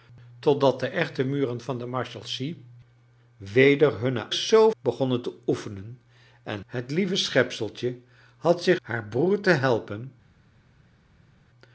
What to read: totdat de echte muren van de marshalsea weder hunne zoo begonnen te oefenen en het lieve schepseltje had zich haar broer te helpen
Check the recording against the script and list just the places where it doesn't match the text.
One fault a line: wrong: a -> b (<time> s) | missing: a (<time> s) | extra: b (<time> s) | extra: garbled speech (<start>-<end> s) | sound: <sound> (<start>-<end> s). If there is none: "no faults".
no faults